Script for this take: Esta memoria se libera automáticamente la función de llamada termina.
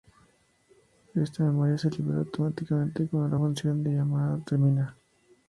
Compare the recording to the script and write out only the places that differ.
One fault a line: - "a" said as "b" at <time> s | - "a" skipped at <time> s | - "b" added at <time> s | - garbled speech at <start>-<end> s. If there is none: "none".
- "cuando" added at 3.1 s